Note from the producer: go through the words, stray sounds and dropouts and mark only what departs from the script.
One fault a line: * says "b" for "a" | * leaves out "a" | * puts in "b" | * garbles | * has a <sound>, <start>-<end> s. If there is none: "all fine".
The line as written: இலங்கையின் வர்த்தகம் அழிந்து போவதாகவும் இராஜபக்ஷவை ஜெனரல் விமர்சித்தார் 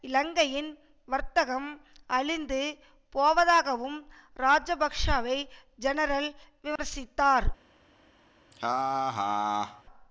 * has a dropout, 6.8-6.8 s
* has a laugh, 8.5-9.8 s